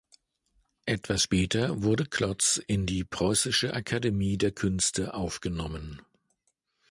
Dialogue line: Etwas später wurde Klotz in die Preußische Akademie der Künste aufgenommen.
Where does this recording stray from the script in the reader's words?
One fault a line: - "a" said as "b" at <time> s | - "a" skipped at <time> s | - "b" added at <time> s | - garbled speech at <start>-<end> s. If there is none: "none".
none